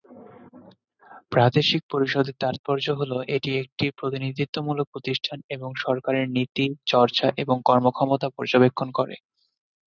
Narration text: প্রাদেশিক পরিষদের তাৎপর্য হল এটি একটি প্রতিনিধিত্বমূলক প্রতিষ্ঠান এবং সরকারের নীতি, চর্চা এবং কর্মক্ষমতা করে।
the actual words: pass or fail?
fail